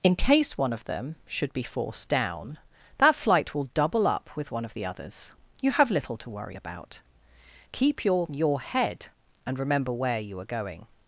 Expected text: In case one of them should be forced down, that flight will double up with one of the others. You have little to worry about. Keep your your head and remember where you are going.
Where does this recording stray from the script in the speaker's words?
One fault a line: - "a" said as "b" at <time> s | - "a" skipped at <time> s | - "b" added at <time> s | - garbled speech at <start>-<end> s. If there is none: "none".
none